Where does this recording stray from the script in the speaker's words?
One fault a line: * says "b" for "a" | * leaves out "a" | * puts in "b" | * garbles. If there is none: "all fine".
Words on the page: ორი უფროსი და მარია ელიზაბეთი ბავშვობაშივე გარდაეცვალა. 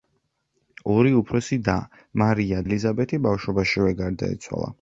all fine